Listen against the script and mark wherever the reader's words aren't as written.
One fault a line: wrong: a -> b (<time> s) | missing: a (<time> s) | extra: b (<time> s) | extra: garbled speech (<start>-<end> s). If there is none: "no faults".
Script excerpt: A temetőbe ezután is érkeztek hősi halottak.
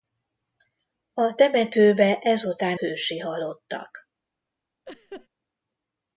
missing: is érkeztek (2.8 s)